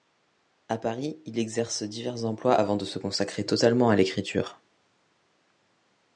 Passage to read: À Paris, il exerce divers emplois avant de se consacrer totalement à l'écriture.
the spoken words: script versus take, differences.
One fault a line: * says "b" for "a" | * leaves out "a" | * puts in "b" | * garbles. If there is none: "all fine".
all fine